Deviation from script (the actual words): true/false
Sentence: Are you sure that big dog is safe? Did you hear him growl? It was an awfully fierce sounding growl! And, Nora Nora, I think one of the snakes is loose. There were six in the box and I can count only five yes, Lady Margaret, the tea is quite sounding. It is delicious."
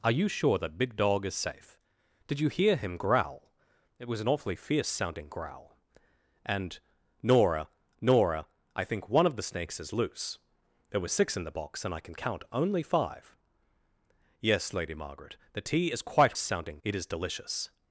false